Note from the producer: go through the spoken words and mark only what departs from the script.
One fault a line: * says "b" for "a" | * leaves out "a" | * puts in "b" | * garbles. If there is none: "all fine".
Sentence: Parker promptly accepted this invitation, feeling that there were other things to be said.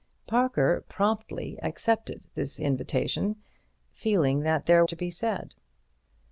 * leaves out "were other things"